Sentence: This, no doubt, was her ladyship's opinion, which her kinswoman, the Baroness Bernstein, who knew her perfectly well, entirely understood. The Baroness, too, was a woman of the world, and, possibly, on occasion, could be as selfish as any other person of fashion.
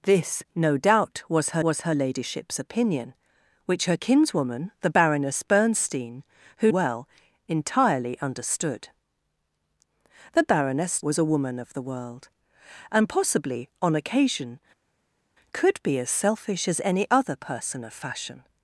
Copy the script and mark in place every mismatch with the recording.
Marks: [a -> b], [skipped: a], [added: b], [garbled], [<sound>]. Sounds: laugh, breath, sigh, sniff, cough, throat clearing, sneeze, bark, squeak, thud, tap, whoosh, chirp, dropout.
This, no doubt, was her [added: was her] ladyship's opinion, which her kinswoman, the Baroness Bernstein, who [skipped: knew her perfectly] well, entirely understood. The Baroness, [skipped: too,] was a woman of the world, and, possibly, on occasion, could be as selfish as any other person of fashion.